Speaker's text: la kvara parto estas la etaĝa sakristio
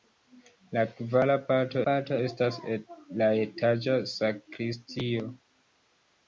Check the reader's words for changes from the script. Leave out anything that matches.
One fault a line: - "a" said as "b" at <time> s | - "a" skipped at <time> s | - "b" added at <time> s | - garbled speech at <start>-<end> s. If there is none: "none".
- "parto" added at 1.9 s